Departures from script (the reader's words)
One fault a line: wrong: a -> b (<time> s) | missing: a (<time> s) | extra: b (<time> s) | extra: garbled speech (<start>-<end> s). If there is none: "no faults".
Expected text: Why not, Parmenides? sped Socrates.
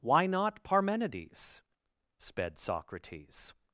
no faults